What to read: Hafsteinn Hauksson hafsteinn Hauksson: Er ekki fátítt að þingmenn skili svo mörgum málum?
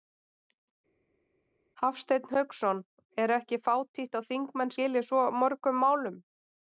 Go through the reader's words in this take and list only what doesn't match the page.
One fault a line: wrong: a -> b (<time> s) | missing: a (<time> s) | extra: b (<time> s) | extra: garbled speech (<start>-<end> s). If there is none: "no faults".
missing: hafsteinn Hauksson (2.8 s)